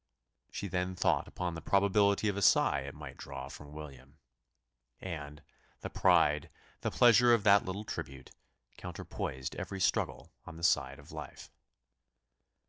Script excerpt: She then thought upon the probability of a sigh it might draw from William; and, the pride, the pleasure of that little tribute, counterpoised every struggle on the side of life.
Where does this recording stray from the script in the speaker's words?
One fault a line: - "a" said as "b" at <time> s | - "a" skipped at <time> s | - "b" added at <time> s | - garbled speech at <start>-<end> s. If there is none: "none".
none